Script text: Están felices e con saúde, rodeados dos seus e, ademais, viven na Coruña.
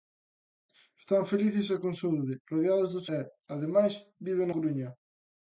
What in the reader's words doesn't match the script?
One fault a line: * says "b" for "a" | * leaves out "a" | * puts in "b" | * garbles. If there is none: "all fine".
* leaves out "seus"
* leaves out "na"